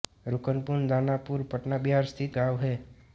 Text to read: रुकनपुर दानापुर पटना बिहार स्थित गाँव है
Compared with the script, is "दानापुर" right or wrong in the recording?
right